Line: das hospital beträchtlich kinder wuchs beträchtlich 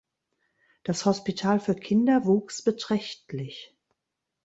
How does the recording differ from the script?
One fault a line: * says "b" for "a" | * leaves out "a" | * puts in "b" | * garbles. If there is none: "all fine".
* says "für" for "beträchtlich"